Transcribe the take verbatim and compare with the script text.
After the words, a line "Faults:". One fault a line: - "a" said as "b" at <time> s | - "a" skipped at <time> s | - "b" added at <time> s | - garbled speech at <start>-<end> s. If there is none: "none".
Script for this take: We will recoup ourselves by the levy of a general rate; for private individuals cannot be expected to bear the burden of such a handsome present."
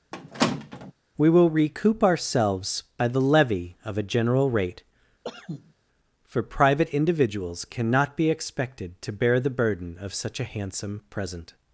We will recoup ourselves by the levy of a general rate; for private individuals cannot be expected to bear the burden of such a handsome present."
Faults:
none